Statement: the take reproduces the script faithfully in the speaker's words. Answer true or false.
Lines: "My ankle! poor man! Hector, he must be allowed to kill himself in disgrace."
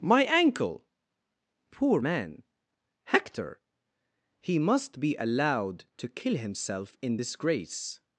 true